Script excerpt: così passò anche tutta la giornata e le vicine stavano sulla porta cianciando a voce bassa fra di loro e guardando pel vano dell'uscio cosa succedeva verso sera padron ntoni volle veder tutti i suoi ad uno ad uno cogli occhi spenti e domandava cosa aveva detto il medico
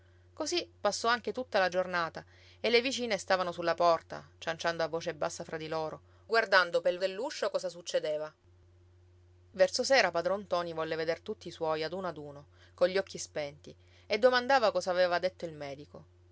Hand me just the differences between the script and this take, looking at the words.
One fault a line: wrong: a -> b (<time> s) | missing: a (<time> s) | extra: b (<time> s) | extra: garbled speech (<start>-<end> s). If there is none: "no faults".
missing: e (6.0 s)
missing: vano (7.0 s)